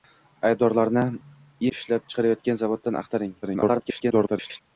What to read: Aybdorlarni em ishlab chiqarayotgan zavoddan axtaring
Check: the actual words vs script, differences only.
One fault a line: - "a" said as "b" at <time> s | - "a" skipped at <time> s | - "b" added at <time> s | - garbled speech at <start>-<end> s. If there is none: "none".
- "em" skipped at 1.0 s
- garbled speech at 3.4-4.6 s